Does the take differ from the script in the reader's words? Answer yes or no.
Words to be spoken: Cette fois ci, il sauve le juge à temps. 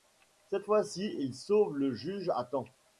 no